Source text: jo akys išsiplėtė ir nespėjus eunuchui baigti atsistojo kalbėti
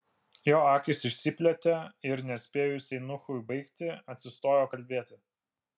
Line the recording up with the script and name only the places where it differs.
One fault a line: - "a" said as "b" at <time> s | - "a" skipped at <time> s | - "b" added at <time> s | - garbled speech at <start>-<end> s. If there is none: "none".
none